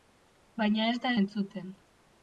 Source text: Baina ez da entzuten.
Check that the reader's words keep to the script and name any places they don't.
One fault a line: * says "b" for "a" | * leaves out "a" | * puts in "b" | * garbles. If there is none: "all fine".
all fine